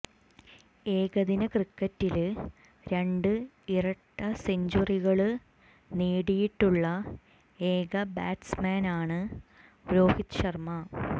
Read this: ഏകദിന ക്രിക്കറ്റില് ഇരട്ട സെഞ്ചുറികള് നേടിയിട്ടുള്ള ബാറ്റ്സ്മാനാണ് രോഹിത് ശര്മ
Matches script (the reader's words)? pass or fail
fail